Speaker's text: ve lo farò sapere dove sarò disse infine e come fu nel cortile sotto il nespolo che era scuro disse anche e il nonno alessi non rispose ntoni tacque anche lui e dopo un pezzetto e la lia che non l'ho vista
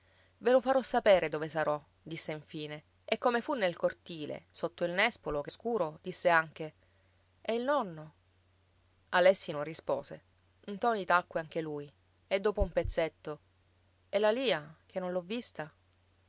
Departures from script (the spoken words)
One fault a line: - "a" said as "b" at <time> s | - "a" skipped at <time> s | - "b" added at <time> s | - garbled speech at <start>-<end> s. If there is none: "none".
- "era" skipped at 5.5 s